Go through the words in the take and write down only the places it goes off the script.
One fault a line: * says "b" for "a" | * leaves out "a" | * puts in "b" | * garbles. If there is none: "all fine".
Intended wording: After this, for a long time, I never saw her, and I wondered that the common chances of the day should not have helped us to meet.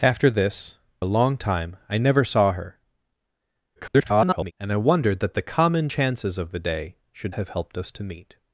* leaves out "for"
* garbles
* leaves out "not"